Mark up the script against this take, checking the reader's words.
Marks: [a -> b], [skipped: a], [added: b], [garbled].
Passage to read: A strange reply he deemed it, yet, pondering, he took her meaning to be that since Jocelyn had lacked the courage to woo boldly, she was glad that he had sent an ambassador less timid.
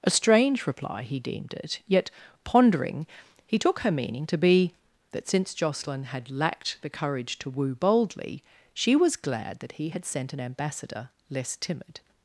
A strange reply he deemed it, yet, pondering, he took her meaning to be that since Jocelyn had lacked the courage to woo boldly, she was glad that he had sent an ambassador less timid.